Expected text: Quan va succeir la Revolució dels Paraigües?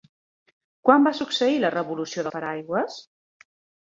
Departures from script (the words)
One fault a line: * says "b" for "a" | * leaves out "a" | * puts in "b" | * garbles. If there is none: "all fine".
* leaves out "dels"